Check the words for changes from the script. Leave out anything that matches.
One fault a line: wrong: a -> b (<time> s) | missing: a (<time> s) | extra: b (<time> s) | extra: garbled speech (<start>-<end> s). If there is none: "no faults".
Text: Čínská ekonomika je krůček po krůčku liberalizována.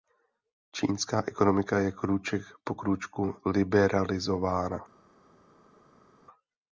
no faults